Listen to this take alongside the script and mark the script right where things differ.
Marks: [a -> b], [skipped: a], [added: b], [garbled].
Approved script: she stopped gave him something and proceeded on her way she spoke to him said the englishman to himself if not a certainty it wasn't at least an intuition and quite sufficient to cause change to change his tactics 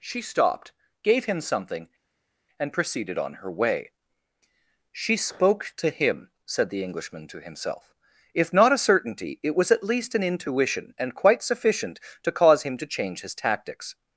she stopped gave him something and proceeded on her way she spoke to him said the englishman to himself if not a certainty it [wasn't -> was] at least an intuition and quite sufficient to cause [change -> him] to change his tactics